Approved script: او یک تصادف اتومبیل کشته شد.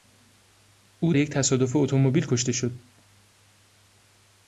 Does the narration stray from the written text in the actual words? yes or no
no